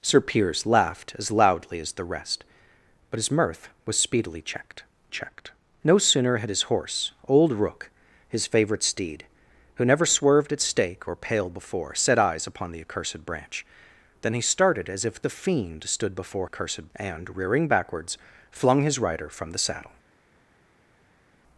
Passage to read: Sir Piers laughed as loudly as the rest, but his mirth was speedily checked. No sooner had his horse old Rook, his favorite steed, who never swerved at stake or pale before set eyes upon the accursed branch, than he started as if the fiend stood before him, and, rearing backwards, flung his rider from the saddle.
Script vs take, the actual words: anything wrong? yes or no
yes